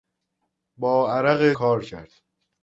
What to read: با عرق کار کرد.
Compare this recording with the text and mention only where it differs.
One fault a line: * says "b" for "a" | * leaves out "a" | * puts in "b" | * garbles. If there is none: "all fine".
all fine